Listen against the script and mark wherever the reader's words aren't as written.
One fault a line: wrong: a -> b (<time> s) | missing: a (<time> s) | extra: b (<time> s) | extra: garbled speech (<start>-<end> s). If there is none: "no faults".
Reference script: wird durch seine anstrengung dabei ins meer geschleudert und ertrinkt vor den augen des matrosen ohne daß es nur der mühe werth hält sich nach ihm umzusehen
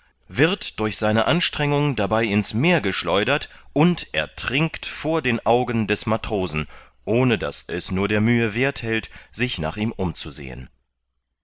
no faults